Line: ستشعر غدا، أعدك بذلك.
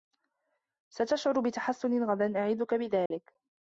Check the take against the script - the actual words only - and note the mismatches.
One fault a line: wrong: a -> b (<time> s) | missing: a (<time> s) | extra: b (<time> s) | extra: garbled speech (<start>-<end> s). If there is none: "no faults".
extra: بتحسّن (1.4 s)